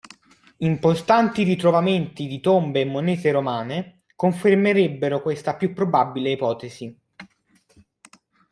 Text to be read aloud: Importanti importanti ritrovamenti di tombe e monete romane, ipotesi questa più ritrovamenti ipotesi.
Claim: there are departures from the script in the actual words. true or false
true